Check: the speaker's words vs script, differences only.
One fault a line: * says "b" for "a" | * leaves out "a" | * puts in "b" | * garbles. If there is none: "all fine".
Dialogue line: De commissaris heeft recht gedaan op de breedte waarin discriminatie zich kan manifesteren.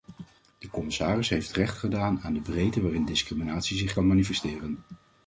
* says "aan" for "op"